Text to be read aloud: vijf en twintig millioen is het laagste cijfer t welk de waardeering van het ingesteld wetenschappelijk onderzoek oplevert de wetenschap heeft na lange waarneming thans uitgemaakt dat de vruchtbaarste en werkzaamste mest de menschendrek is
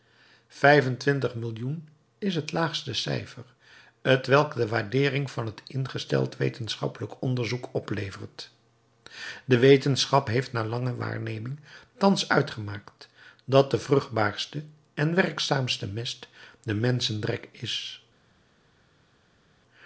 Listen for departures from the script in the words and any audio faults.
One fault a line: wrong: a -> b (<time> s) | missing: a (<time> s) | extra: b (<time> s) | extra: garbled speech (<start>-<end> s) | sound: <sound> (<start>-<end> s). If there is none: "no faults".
no faults